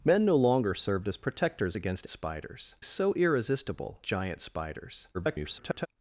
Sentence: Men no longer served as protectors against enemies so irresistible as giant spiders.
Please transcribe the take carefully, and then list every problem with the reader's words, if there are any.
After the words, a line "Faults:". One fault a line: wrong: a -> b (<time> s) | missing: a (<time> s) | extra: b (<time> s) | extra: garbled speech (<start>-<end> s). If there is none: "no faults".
Men no longer served as protectors against spiders so irresistible giant spiders. [garbled]
Faults:
wrong: enemies -> spiders (2.1 s)
missing: as (4.0 s)
extra: garbled speech (5.1-5.9 s)